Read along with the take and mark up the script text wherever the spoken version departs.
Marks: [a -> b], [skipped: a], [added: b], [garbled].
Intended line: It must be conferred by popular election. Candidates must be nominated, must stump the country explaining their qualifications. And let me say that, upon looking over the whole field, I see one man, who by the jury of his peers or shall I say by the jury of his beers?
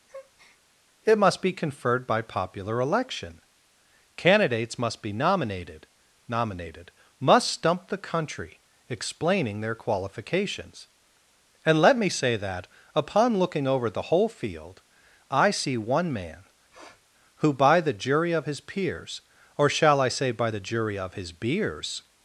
It must be conferred by popular election. Candidates must be nominated, [added: nominated] must stump the country explaining their qualifications. And let me say that, upon looking over the whole field, I see one man, who by the jury of his peers or shall I say by the jury of his beers?